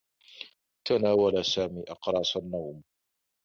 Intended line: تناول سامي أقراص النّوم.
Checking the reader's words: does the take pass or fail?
pass